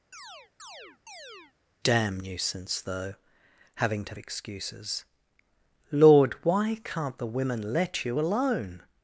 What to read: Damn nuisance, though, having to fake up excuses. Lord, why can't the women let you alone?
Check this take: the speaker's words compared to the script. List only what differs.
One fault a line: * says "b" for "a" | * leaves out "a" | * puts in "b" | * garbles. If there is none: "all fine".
* leaves out "fake up"